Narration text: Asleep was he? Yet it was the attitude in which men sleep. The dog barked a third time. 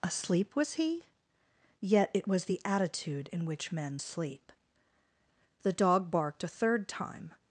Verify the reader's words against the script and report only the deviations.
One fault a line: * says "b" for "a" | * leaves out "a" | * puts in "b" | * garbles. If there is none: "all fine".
all fine